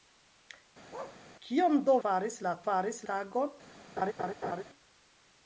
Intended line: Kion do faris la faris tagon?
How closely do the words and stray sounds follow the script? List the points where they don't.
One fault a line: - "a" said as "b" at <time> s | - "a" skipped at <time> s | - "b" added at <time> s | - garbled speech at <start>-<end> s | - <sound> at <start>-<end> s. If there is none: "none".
- bark at 0.9-1.2 s
- laugh at 4.0-4.6 s